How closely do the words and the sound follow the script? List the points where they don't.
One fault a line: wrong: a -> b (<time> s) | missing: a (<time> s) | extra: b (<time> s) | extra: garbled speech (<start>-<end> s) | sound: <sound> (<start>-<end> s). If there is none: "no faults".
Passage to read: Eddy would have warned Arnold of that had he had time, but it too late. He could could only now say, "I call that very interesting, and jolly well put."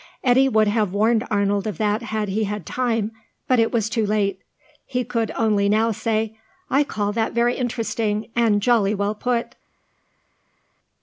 extra: was (3.7 s)
missing: could (5.3 s)